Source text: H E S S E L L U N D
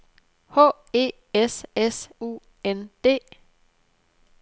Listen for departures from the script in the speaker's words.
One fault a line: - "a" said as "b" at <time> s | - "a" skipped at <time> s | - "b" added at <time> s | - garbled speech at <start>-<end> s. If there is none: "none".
- "E L L" skipped at 2.1 s